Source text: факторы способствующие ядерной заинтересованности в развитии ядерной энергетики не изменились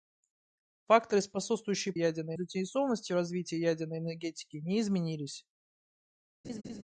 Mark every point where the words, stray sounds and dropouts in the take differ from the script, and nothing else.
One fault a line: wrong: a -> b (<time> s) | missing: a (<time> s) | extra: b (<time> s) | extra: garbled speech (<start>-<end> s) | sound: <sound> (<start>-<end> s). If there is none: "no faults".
sound: laugh (6.4-6.8 s)